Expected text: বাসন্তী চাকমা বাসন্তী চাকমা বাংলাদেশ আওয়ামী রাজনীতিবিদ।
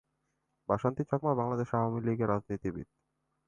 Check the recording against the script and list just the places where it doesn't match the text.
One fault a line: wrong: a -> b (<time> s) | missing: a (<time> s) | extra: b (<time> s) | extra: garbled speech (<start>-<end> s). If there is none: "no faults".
missing: বাসন্তী চাকমা (1.3 s)
extra: লীগের (2.0 s)